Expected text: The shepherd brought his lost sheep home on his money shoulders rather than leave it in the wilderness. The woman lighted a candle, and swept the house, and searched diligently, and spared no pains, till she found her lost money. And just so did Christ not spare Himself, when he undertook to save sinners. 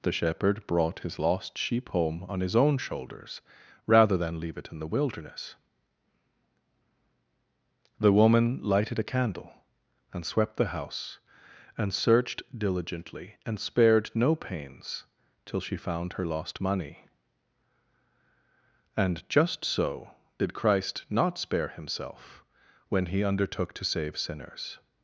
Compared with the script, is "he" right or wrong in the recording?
right